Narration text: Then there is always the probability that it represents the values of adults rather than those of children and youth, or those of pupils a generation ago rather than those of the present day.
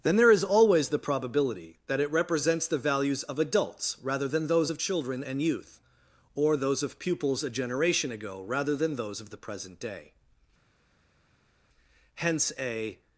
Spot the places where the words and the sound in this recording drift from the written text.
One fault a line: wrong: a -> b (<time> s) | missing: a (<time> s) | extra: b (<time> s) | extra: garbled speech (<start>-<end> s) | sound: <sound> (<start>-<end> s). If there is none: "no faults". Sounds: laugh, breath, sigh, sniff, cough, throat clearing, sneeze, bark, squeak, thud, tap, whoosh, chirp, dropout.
extra: Hence a (12.1 s)